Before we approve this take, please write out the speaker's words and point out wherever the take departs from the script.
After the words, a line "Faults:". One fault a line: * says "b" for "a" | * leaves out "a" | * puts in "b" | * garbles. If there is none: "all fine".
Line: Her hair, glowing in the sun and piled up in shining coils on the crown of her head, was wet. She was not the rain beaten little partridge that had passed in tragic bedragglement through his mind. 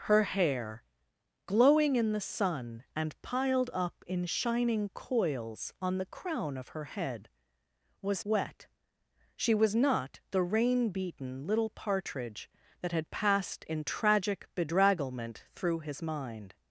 Her hair, glowing in the sun and piled up in shining coils on the crown of her head, was wet. She was not the rain beaten little partridge that had passed in tragic bedragglement through his mind.
Faults:
all fine